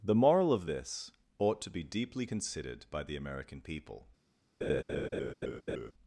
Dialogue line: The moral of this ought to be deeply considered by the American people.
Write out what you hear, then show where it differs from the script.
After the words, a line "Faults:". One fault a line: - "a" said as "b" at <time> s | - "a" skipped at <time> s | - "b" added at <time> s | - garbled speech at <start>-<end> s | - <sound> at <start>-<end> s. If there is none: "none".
The moral of this ought to be deeply considered by the American people.
Faults:
- laugh at 4.6-5.9 s